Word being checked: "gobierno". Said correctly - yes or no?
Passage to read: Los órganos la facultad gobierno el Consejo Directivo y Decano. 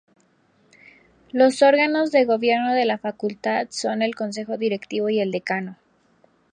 no